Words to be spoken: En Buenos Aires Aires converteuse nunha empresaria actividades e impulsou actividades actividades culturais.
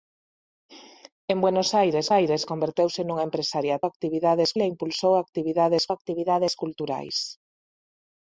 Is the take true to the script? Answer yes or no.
yes